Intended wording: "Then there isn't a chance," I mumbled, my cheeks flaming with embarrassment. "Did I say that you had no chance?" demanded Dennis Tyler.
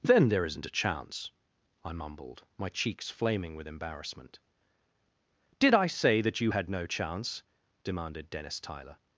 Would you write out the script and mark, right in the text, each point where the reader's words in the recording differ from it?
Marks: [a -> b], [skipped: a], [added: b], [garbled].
"Then there isn't a chance," I mumbled, my cheeks flaming with embarrassment. "Did I say that you had no chance?" demanded Dennis Tyler.